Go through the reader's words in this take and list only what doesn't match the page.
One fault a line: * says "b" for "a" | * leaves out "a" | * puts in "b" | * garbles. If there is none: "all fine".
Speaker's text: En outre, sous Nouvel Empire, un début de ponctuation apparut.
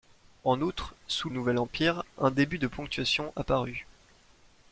all fine